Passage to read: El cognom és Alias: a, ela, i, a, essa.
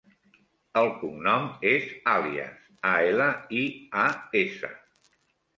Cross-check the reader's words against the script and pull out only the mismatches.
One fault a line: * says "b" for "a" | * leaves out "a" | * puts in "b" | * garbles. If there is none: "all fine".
all fine